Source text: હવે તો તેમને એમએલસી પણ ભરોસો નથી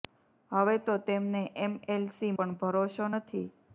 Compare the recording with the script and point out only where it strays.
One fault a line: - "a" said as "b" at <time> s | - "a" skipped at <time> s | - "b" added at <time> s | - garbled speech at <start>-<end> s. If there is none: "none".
none